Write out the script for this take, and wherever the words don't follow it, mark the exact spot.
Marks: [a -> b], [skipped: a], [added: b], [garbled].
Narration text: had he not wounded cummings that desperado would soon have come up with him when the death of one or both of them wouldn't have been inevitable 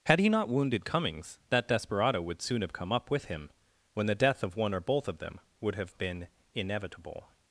had he not wounded cummings that desperado would soon have come up with him when the death of one or both of them [wouldn't -> would] have been inevitable